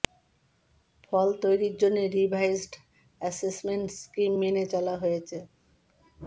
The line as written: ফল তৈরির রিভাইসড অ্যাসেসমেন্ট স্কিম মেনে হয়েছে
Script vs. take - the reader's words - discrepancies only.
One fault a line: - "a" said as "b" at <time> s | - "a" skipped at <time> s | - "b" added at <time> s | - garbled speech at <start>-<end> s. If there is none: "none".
- "জন্য" added at 1.8 s
- "চলা" added at 4.7 s